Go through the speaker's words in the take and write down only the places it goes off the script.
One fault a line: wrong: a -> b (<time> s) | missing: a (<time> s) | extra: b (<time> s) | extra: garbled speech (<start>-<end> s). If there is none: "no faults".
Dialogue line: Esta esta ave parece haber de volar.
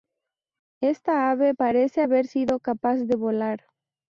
missing: esta (1.3 s)
extra: sido capaz (2.2 s)